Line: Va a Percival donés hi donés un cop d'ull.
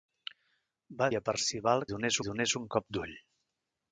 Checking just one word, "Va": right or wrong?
right